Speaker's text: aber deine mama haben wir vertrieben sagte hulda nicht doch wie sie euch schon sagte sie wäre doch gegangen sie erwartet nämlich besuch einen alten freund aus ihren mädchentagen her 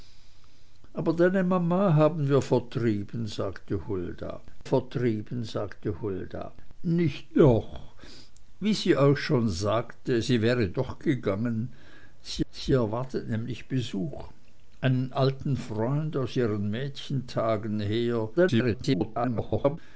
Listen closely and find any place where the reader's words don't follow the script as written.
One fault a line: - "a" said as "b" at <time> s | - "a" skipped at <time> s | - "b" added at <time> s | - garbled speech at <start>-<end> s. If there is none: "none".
- "vertrieben sagte hulda" added at 4.6 s
- "sie" added at 12.5 s
- garbled speech at 18.4-19.8 s